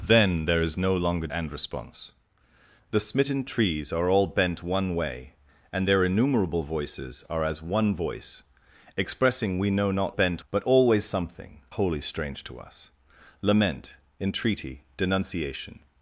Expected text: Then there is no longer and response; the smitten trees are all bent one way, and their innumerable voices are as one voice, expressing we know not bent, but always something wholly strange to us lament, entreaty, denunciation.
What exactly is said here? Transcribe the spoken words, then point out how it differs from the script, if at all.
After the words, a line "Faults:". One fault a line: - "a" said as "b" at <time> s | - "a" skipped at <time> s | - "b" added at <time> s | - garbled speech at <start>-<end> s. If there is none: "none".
Then there is no longer and response; the smitten trees are all bent one way, and their innumerable voices are as one voice, expressing we know not bent, but always something wholly strange to us lament, entreaty, denunciation.
Faults:
none